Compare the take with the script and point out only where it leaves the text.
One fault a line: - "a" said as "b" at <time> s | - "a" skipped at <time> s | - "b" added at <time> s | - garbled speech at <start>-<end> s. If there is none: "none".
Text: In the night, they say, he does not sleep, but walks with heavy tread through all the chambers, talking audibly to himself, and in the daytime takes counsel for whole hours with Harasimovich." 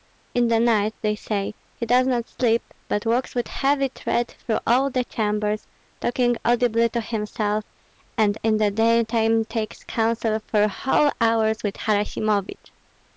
none